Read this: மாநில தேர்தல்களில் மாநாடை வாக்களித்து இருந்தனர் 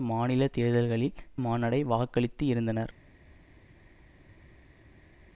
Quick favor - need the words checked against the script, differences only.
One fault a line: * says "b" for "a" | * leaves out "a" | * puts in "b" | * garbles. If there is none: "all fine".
all fine